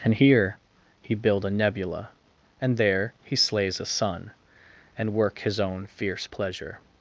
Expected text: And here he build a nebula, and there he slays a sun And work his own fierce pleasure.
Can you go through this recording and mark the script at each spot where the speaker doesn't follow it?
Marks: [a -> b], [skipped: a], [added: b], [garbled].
And here he build a nebula, and there he slays a sun And work his own fierce pleasure.